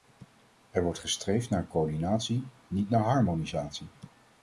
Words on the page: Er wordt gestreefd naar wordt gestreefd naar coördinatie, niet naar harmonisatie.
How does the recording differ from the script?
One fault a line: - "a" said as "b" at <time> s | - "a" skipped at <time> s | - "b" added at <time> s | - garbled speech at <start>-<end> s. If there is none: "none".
- "wordt gestreefd naar" skipped at 1.7 s